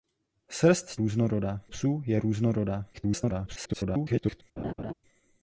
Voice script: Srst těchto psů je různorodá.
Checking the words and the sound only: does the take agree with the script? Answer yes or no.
no